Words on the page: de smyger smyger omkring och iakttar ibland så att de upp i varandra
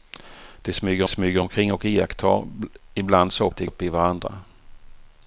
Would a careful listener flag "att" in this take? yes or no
no